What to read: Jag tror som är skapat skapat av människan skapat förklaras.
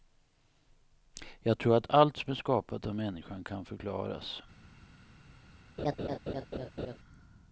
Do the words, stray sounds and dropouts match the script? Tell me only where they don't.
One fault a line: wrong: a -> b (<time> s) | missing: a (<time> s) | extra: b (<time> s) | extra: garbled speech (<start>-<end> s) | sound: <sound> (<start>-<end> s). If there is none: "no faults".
extra: att allt (1.8 s)
missing: skapat (2.9 s)
wrong: skapat -> kan (3.4 s)
sound: laugh (5.8-7.0 s)